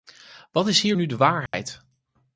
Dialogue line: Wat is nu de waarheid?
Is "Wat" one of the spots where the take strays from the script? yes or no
no